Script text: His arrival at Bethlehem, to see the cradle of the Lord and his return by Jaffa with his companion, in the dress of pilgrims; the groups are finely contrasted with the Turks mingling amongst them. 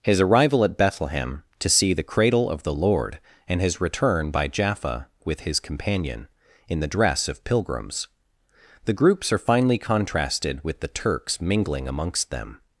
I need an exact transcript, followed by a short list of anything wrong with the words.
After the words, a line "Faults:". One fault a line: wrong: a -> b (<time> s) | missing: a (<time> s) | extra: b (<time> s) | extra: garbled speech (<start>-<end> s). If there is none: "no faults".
His arrival at Bethlehem, to see the cradle of the Lord and his return by Jaffa with his companion, in the dress of pilgrims; the groups are finely contrasted with the Turks mingling amongst them.
Faults:
no faults